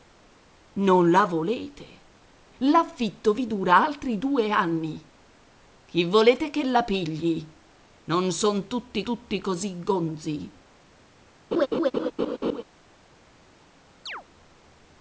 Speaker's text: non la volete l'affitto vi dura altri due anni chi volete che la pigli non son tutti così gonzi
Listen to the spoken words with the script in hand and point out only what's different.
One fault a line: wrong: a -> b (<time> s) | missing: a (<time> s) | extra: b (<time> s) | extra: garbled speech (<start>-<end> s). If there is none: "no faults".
extra: tutti (9.0 s)